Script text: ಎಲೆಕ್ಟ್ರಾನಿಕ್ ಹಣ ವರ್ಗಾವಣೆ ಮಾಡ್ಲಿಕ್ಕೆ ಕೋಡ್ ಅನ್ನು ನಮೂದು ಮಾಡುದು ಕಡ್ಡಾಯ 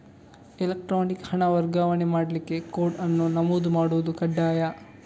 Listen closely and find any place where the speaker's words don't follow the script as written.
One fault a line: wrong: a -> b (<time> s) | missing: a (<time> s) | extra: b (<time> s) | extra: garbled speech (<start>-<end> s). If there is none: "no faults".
no faults